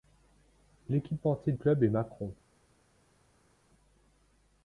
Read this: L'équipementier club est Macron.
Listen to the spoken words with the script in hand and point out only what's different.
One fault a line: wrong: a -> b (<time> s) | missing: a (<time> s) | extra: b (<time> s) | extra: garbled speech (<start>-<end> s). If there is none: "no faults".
no faults